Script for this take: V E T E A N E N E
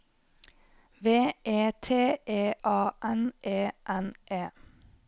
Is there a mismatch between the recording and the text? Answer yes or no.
no